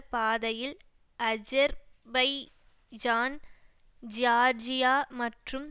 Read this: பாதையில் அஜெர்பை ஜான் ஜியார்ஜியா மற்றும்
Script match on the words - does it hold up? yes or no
yes